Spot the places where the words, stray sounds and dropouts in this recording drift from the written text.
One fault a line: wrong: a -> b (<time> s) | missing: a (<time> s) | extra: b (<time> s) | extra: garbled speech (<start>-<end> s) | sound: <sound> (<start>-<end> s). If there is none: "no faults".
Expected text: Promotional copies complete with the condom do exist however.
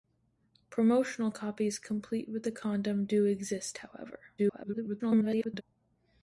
extra: garbled speech (4.4-5.6 s)